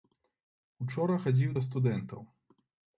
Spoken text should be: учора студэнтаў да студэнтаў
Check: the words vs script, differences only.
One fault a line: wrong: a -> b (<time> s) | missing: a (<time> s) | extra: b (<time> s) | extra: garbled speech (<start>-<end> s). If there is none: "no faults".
wrong: студэнтаў -> хадзіў (1.2 s)